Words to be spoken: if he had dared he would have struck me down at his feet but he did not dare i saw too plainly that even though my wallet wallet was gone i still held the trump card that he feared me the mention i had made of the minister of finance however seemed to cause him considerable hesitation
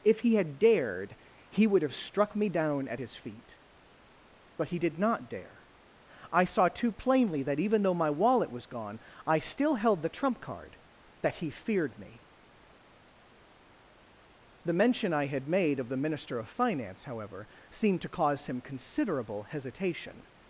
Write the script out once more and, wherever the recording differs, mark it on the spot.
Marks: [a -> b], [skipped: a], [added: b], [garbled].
if he had dared he would have struck me down at his feet but he did not dare i saw too plainly that even though my wallet [skipped: wallet] was gone i still held the trump card that he feared me the mention i had made of the minister of finance however seemed to cause him considerable hesitation